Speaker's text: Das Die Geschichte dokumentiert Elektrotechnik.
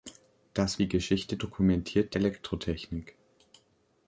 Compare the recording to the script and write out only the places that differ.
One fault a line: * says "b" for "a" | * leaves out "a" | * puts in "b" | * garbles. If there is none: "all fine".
all fine